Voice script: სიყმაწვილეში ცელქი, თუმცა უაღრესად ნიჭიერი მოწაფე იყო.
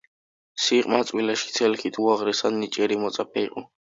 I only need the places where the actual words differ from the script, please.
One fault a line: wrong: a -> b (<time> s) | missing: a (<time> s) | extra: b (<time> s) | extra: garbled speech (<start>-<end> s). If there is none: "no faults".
missing: თუმცა (1.9 s)